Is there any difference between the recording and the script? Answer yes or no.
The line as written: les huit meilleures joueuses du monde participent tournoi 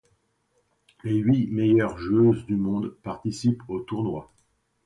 yes